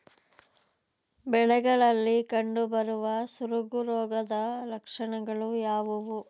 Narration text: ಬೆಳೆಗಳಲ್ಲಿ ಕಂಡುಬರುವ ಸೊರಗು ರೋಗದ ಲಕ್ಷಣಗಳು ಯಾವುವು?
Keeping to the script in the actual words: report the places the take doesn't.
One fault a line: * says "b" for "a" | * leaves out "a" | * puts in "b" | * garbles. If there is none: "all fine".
all fine